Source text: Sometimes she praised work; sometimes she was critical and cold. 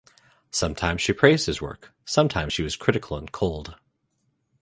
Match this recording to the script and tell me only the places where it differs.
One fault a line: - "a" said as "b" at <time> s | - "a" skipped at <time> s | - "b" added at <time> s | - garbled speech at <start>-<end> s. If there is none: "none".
- "his" added at 1.4 s